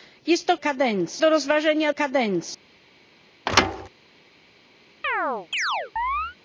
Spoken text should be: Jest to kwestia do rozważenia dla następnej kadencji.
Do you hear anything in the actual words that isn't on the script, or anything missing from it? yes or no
yes